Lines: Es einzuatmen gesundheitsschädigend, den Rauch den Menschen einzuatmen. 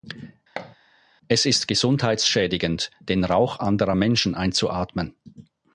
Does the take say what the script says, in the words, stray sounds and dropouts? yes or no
no